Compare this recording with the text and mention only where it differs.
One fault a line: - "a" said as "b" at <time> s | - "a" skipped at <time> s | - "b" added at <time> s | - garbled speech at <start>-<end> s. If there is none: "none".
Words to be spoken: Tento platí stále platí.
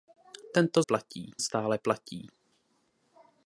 none